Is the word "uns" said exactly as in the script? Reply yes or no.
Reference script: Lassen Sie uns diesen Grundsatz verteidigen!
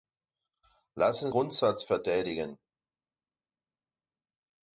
no